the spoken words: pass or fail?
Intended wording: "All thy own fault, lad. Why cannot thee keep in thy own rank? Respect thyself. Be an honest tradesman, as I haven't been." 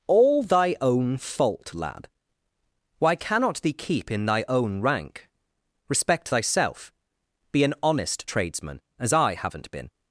pass